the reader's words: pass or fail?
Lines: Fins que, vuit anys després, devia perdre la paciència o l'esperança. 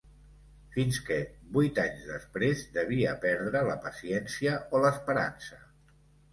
pass